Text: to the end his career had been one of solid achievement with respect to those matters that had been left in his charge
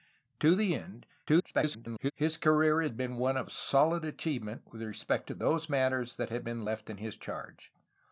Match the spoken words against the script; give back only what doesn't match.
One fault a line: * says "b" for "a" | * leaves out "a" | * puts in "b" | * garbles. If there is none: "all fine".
* garbles